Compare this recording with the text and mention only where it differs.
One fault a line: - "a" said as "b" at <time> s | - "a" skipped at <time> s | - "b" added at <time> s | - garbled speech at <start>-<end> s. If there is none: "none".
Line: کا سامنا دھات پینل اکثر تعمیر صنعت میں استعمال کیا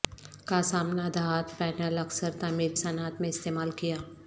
none